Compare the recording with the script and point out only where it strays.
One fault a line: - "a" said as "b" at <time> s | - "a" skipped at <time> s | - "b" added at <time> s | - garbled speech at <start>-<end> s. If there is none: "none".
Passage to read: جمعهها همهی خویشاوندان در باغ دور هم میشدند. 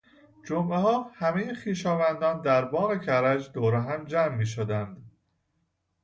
- "کرج" added at 3.0 s
- "جمع" added at 4.0 s